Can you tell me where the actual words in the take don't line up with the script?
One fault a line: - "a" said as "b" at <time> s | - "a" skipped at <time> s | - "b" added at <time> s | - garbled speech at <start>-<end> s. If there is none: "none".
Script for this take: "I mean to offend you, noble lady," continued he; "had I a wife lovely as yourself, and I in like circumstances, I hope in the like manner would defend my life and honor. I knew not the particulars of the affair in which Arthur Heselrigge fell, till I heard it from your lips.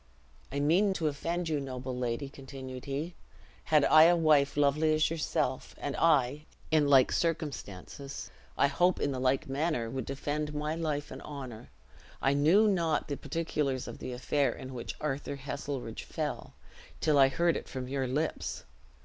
none